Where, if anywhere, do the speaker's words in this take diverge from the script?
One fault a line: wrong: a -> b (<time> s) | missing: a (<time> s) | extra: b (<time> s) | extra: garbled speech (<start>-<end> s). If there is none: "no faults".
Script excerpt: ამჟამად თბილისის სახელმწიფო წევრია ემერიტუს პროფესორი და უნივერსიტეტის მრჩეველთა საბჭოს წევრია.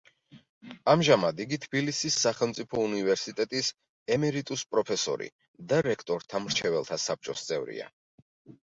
extra: იგი (1.4 s)
wrong: წევრია -> უნივერსიტეტის (2.9 s)
wrong: უნივერსიტეტის -> რექტორთა (5.9 s)